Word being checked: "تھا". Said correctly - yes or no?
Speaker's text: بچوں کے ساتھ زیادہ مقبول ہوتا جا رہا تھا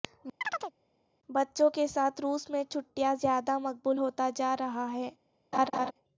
no